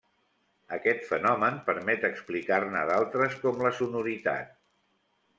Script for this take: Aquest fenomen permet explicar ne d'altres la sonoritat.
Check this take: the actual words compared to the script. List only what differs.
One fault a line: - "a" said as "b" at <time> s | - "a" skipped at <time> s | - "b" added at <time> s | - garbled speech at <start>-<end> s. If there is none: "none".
- "com" added at 3.4 s